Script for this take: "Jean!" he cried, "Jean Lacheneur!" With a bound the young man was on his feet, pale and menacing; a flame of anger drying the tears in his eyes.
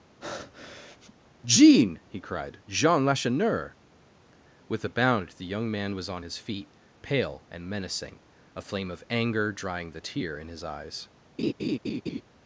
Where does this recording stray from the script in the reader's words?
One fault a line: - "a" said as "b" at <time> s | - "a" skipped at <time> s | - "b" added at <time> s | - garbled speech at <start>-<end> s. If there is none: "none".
- "tears" said as "tear" at 10.0 s